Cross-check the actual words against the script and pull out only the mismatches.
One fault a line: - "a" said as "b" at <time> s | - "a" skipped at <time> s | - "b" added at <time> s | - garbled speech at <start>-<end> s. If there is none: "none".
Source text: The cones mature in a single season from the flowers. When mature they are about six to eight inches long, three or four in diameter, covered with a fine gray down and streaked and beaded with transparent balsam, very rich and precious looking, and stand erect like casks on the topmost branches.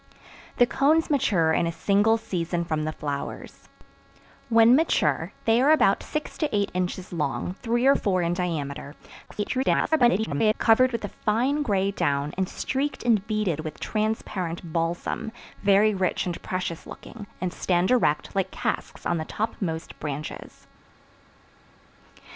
- garbled speech at 9.3-10.5 s